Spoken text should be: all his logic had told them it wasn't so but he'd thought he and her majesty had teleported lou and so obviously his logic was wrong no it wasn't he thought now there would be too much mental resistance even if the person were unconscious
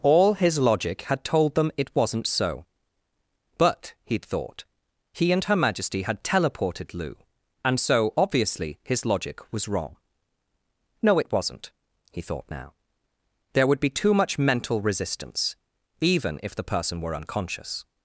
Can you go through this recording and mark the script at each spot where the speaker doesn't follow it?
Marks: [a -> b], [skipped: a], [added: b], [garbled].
all his logic had told them it wasn't so but he'd thought he and her majesty had teleported lou and so obviously his logic was wrong no it wasn't he thought now there would be too much mental resistance even if the person were unconscious